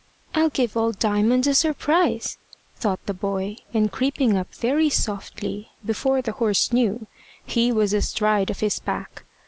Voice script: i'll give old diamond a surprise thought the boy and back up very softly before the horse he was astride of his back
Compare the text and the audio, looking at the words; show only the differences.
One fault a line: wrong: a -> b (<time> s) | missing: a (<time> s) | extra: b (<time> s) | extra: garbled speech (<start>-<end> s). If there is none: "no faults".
wrong: back -> creeping (3.9 s)
extra: knew (6.7 s)